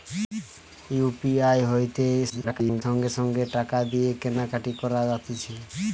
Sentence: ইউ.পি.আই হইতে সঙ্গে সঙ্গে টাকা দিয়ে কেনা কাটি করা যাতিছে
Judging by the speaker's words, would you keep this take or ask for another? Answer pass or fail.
fail